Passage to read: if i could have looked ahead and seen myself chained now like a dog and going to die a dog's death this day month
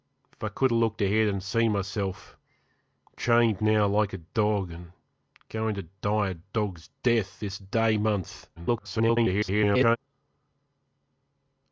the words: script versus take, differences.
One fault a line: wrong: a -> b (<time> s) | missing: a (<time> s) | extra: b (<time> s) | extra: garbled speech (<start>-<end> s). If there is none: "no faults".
extra: garbled speech (8.6-10.0 s)